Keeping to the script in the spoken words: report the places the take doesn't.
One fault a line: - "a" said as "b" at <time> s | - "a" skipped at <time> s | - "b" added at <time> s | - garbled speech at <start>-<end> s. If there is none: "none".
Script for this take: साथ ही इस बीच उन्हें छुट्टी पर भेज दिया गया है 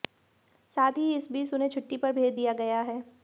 none